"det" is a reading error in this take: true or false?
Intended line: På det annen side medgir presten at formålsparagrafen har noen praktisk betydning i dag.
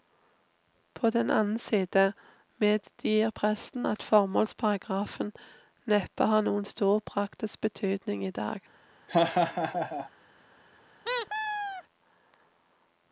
true